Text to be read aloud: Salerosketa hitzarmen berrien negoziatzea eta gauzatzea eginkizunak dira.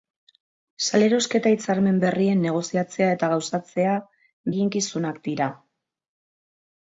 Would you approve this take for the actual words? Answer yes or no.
yes